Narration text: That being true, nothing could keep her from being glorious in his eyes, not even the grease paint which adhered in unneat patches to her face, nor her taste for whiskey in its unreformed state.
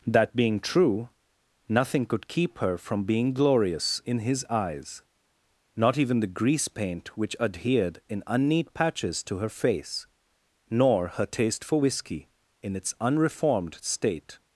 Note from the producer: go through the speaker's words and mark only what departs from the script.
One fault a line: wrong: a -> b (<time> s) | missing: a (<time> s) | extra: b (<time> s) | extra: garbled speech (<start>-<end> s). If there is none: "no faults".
no faults